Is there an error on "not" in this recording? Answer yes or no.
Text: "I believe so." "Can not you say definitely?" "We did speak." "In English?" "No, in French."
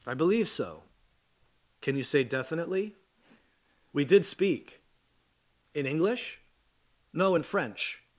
yes